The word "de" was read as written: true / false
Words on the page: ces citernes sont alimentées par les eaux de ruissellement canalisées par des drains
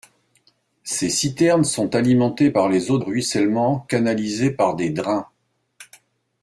false